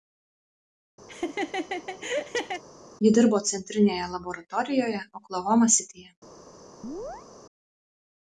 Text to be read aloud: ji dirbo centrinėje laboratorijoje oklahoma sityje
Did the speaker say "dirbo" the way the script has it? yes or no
yes